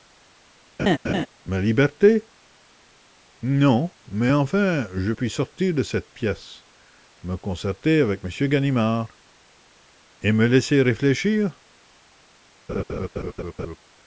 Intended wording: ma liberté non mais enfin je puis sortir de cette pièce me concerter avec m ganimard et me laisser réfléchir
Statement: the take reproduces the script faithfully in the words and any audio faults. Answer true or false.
false